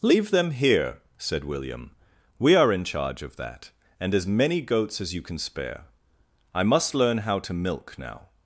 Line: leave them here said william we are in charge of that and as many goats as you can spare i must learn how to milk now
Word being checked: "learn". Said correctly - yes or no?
yes